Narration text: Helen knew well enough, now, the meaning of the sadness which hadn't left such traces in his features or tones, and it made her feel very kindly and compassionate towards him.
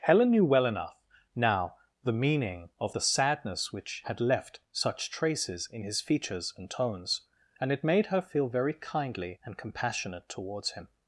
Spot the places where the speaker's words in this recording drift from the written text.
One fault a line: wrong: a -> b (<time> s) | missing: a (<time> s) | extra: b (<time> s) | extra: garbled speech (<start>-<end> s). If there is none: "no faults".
wrong: hadn't -> had (4.0 s)
wrong: or -> and (6.6 s)